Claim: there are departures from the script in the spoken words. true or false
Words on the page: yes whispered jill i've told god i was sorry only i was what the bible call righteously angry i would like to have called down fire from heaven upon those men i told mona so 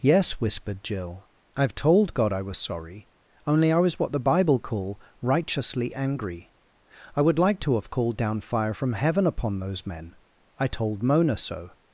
false